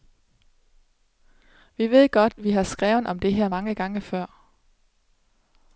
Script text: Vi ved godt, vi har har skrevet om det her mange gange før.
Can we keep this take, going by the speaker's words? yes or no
no